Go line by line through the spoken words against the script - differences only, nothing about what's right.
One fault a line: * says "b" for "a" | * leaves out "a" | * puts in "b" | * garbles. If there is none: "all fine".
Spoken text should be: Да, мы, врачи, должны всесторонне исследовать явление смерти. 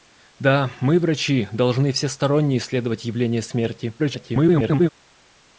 * garbles